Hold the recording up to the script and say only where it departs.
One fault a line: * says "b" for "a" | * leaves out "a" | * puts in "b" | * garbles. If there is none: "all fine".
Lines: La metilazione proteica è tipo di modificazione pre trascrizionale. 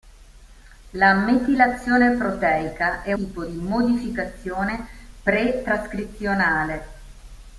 all fine